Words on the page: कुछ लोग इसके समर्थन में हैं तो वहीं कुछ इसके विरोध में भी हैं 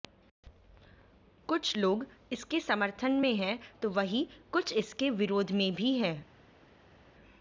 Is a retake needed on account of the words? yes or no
no